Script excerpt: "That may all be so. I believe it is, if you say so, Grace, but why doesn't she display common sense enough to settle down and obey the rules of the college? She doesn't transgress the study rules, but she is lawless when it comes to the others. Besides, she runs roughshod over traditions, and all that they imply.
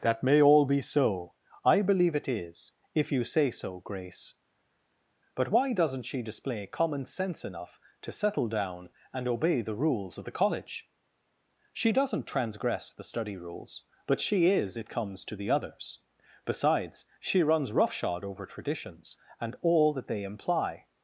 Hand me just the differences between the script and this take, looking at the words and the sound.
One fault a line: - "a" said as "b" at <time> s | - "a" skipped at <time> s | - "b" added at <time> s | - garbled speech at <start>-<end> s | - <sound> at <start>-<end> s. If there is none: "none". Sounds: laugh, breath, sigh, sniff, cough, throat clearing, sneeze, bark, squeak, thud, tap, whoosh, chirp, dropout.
- "lawless when" skipped at 14.8 s